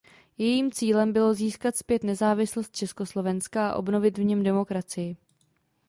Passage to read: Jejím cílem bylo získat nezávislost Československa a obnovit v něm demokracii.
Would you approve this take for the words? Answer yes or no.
no